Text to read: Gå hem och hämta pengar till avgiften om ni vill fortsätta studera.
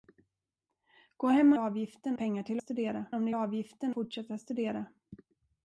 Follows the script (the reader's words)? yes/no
no